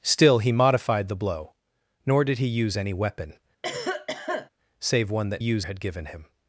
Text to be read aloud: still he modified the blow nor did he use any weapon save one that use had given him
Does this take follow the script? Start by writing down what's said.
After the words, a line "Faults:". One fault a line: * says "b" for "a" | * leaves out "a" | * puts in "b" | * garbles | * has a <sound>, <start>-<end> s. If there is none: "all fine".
still he modified the blow nor did he use any weapon save one that use had given him
Faults:
* has a cough, 3.6-4.5 s